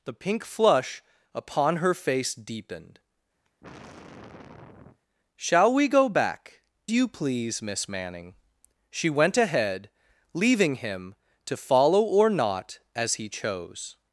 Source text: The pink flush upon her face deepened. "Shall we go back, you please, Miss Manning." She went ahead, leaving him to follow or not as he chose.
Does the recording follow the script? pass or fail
pass